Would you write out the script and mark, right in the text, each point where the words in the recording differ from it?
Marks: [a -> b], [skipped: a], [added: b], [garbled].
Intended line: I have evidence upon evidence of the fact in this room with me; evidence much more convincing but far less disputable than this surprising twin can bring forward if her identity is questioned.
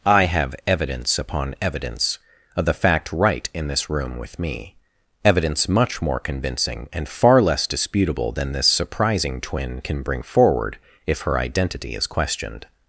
I have evidence upon evidence of the fact [added: right] in this room with me; evidence much more convincing [but -> and] far less disputable than this surprising twin can bring forward if her identity is questioned.